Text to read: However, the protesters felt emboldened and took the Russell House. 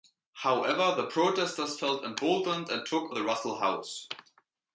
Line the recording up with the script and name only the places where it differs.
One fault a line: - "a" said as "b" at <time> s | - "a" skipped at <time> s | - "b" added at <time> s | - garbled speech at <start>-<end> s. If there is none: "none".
none